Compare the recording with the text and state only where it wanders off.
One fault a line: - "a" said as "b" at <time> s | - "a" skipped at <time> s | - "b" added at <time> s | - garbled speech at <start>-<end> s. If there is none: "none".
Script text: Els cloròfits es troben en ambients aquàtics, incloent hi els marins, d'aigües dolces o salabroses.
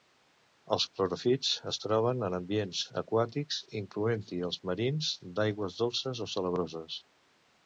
none